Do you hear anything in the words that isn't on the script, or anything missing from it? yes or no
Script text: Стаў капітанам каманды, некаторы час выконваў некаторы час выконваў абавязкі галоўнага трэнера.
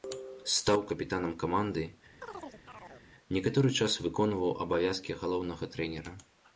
yes